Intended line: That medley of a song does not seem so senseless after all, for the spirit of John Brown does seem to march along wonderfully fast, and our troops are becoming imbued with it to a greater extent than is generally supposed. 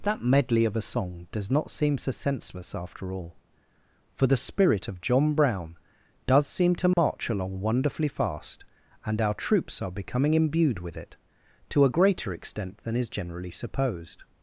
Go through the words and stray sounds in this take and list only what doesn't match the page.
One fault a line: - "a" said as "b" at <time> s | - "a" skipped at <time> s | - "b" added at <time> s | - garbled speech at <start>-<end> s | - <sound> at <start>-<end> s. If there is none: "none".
- dropout at 6.9-7.0 s